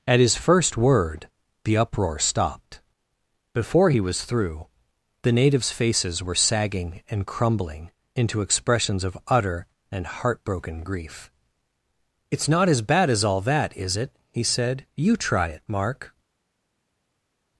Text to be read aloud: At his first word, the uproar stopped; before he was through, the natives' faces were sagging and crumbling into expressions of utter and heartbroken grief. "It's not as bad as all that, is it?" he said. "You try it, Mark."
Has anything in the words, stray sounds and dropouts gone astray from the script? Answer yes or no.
no